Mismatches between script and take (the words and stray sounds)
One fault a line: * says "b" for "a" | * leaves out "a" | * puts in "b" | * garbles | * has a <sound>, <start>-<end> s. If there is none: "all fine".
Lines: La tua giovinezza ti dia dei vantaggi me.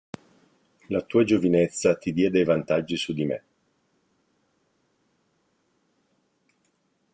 * puts in "su di"